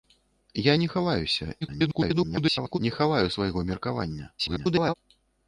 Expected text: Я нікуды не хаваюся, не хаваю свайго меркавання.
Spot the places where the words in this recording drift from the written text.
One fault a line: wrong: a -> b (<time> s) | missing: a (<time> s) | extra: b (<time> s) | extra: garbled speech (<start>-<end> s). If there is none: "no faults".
missing: нікуды (0.7 s)
extra: garbled speech (1.6-2.8 s)
extra: garbled speech (4.4-4.9 s)